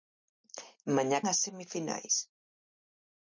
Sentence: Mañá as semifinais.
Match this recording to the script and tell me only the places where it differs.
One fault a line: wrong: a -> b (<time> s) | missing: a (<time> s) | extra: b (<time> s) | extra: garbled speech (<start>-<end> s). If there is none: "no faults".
no faults